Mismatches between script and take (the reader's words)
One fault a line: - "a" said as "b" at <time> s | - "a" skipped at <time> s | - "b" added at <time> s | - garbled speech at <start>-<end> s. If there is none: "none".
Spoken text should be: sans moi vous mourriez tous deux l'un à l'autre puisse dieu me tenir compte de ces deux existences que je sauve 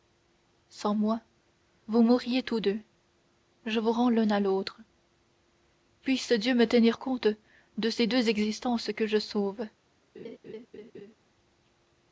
- "je vous rends" added at 3.6 s